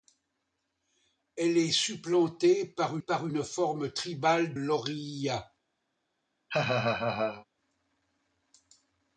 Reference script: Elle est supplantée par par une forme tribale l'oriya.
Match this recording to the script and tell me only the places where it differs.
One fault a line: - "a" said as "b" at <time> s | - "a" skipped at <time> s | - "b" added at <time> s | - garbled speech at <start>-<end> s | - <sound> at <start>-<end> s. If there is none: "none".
- laugh at 6.5-7.5 s